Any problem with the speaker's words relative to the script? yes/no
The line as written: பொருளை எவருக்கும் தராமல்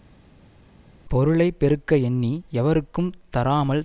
yes